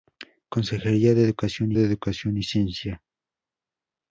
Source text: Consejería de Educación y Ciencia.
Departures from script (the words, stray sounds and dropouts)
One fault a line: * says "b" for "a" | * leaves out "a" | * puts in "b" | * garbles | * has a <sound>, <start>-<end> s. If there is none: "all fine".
* puts in "de Educación"